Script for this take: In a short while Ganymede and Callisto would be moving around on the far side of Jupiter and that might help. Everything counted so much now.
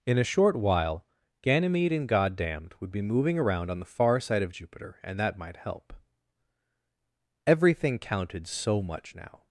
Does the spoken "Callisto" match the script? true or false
false